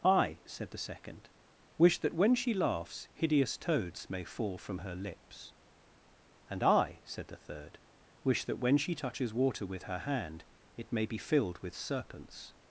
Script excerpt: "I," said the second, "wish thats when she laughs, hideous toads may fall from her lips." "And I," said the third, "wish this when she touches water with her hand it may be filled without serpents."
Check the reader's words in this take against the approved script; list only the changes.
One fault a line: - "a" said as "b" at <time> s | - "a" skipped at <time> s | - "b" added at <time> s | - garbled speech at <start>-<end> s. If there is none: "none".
- "thats" said as "that" at 2.0 s
- "this" said as "that" at 8.4 s
- "without" said as "with" at 11.6 s